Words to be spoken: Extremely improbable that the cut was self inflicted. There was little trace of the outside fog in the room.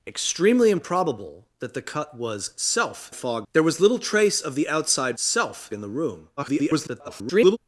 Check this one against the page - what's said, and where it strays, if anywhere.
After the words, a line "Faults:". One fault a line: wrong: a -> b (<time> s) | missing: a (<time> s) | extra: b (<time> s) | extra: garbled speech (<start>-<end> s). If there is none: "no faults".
Extremely improbable that the cut was self fog. There was little trace of the outside self in the room. [garbled]
Faults:
wrong: inflicted -> fog (3.1 s)
wrong: fog -> self (5.1 s)
extra: garbled speech (6.4-7.6 s)